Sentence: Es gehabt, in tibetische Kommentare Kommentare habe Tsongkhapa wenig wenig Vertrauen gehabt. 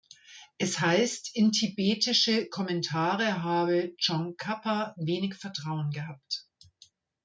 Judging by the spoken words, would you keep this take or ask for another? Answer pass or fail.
fail